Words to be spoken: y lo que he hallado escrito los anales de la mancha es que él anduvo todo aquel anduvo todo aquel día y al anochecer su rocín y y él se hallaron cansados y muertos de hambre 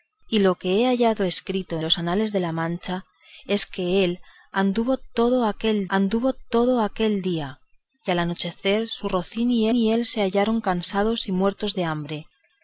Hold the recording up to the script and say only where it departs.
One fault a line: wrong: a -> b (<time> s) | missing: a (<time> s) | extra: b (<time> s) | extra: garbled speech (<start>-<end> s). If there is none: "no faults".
no faults